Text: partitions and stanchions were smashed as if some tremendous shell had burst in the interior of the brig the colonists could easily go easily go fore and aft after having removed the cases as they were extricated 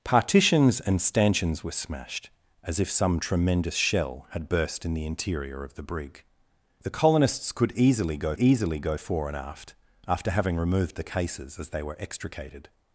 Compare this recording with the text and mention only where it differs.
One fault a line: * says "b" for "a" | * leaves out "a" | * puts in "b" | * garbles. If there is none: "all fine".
all fine